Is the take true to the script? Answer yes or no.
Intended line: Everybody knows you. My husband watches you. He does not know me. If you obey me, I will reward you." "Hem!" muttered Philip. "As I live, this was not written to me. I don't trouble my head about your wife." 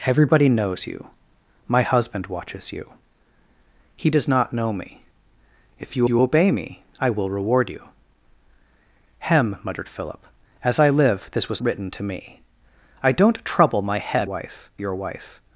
no